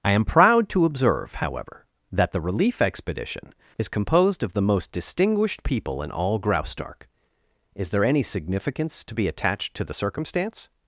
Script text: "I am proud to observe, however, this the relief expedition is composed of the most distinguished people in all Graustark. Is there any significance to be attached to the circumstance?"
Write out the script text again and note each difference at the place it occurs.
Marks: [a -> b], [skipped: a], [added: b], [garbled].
"I am proud to observe, however, [this -> that] the relief expedition is composed of the most distinguished people in all Graustark. Is there any significance to be attached to the circumstance?"